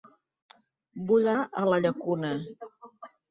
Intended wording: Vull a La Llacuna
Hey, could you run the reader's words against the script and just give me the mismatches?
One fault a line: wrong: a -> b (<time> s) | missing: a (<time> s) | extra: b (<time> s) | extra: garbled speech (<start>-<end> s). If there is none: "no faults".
no faults